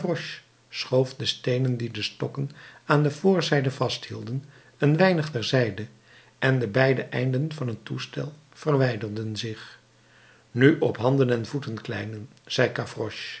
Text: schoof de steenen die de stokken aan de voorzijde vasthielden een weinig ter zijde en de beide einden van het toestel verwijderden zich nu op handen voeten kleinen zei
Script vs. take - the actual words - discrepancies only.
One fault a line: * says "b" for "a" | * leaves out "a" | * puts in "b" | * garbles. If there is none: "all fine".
* puts in "en"